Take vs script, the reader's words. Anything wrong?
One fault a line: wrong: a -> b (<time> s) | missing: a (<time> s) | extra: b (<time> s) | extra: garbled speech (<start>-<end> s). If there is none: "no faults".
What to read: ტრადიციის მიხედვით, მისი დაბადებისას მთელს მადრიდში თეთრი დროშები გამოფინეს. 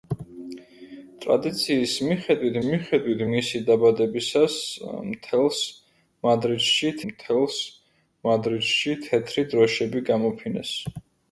extra: მიხედვით (2.7 s)
extra: მთელს მადრიდში (7.1 s)